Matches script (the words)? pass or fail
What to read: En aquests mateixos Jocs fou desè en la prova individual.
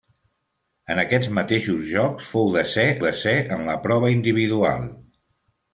fail